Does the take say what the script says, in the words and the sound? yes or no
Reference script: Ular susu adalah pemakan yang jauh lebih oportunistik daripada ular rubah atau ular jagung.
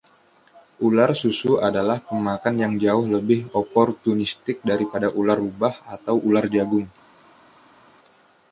yes